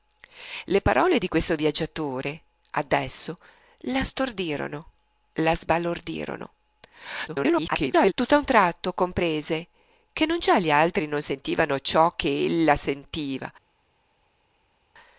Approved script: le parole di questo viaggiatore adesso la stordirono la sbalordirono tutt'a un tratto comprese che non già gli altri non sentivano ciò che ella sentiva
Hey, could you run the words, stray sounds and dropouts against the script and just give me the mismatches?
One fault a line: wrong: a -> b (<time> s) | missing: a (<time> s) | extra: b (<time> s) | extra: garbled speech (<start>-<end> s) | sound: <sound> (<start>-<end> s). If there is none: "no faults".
extra: garbled speech (7.3-8.1 s)